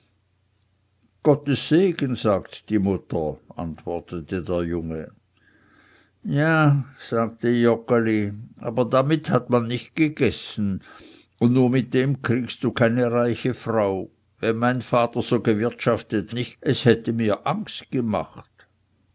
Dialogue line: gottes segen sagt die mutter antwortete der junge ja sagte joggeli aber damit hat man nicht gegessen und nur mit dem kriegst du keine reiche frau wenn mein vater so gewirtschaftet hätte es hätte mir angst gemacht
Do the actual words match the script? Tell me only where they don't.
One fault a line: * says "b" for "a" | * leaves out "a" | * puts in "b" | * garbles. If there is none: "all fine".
* says "nicht" for "hätte"